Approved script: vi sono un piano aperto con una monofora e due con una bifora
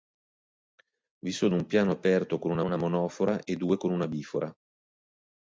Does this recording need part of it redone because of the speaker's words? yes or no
yes